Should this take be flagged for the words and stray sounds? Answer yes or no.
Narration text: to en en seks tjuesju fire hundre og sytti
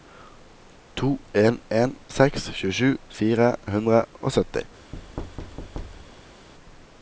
yes